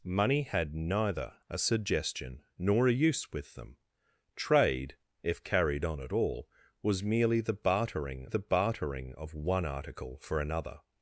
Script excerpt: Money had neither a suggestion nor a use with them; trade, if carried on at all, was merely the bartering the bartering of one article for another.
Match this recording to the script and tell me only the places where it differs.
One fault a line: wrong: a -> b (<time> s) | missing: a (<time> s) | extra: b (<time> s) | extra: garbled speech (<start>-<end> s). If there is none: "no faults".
no faults